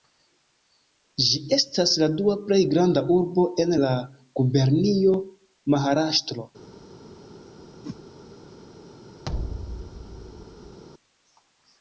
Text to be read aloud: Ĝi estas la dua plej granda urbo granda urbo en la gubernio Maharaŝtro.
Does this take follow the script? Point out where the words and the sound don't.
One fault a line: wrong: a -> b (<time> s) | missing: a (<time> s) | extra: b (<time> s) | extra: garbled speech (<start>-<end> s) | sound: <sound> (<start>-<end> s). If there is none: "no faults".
missing: granda urbo (3.5 s)
sound: whoosh (7.8-8.0 s)
sound: thud (9.2-10.8 s)